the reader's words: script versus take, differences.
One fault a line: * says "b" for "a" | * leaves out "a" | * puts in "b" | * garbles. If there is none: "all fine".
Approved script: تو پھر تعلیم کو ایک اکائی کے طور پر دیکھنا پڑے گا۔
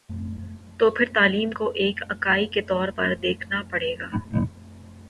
all fine